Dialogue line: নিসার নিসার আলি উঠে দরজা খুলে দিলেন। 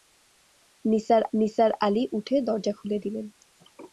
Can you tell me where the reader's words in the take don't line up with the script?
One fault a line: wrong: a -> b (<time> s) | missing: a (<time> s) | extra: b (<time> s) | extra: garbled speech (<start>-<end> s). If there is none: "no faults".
no faults